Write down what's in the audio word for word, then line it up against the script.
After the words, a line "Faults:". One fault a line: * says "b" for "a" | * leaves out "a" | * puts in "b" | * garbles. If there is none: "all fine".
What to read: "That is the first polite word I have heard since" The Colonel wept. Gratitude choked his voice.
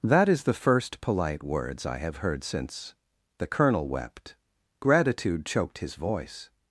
"That is the first polite words I have heard since" The Colonel wept. Gratitude choked his voice.
Faults:
* says "words" for "word"